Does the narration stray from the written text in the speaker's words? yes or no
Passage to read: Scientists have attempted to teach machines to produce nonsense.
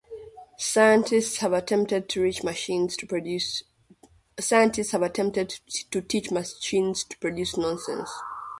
no